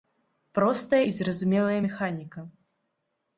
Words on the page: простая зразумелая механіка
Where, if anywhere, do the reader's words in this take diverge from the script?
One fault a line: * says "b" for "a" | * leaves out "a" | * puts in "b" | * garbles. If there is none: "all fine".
* puts in "і"